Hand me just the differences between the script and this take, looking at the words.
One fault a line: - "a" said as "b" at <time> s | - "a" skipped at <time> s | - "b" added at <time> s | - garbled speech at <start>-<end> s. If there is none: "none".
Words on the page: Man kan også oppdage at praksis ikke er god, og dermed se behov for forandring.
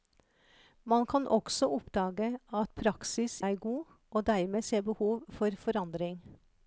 - "ikke" skipped at 3.4 s